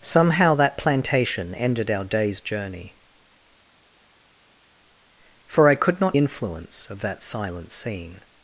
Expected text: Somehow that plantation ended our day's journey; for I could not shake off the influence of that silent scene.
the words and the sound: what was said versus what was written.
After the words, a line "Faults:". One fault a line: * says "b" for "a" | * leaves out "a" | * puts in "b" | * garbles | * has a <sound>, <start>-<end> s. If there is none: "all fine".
Somehow that plantation ended our day's journey; for I could not influence of that silent scene.
Faults:
* leaves out "shake off the"